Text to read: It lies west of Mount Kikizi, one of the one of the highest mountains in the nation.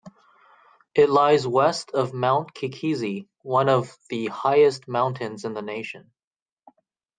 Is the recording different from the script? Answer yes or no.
yes